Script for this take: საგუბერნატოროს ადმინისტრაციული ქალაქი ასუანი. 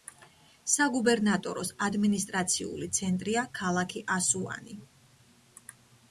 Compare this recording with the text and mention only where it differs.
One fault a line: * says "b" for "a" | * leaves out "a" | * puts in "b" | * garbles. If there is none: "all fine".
* puts in "ცენტრია"